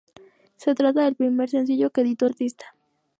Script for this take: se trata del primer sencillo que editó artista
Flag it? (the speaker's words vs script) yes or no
no